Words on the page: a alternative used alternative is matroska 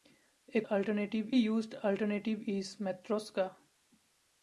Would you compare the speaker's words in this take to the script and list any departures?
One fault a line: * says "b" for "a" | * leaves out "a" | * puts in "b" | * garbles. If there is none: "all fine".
all fine